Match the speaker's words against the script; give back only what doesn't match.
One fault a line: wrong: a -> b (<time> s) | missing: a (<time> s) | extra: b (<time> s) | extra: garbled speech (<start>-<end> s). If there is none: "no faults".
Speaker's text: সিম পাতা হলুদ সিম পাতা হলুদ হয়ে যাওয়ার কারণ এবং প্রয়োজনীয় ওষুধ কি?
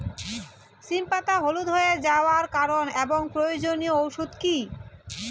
missing: সিম পাতা হলুদ (1.7 s)